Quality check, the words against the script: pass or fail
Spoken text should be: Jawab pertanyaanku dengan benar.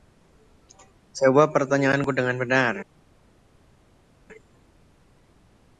pass